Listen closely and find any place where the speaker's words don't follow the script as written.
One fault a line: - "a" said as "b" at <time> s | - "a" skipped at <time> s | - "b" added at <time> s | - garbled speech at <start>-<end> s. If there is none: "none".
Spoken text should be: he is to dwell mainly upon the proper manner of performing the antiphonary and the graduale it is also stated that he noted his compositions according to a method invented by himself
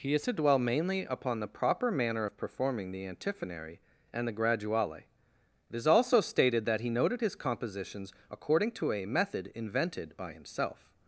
none